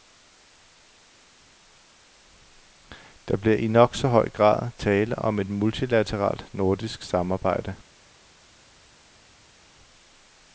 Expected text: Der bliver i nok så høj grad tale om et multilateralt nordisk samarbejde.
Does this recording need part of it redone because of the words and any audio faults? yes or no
no